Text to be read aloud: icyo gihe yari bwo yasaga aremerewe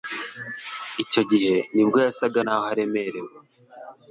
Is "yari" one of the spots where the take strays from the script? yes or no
yes